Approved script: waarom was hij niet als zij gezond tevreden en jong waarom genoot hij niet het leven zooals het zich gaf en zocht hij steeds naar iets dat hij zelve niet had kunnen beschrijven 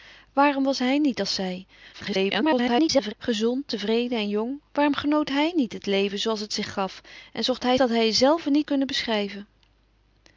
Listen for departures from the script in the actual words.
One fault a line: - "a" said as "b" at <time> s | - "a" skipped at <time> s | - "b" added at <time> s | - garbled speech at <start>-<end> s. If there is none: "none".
- garbled speech at 1.9-3.1 s
- "steeds naar iets" skipped at 7.8 s
- "had" skipped at 8.7 s